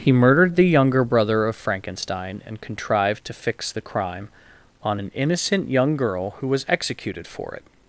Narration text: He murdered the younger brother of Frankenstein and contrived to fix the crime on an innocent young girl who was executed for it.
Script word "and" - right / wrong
right